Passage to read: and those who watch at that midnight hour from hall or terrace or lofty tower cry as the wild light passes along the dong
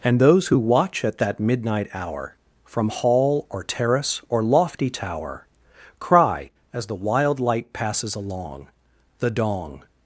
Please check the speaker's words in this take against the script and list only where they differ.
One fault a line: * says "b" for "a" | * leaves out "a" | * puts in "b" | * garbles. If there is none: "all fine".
all fine